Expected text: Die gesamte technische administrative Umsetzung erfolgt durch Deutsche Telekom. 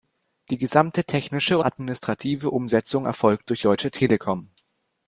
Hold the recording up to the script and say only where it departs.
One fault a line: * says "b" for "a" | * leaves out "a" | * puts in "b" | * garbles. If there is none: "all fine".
all fine